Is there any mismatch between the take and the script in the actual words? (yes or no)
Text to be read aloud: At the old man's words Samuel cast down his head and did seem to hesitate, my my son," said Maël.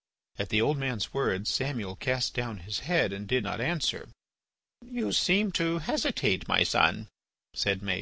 yes